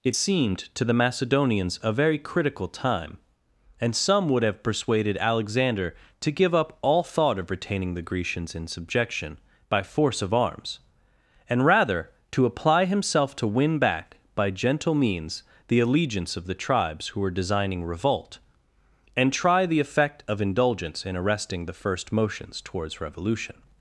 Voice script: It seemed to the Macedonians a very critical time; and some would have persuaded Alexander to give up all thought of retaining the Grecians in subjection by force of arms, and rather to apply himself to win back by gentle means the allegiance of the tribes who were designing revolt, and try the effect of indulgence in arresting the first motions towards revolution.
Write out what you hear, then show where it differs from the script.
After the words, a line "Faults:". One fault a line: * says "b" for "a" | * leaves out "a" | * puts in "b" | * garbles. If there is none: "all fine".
It seemed to the Macedonians a very critical time; and some would have persuaded Alexander to give up all thought of retaining the Grecians in subjection by force of arms, and rather to apply himself to win back by gentle means the allegiance of the tribes who were designing revolt, and try the effect of indulgence in arresting the first motions towards revolution.
Faults:
all fine